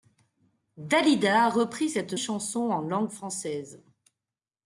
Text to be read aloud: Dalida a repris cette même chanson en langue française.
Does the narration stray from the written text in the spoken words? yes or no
yes